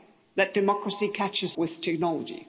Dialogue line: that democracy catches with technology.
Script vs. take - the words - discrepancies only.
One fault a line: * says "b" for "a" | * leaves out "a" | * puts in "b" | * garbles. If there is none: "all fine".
all fine